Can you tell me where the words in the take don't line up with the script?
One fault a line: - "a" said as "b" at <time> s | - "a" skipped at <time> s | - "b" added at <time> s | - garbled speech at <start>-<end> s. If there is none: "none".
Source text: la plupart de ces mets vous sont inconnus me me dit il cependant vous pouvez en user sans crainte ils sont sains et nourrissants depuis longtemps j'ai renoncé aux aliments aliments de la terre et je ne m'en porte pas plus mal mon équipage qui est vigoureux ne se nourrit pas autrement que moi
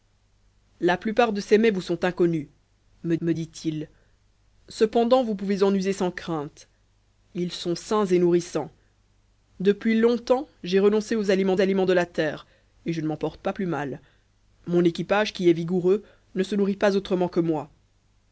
none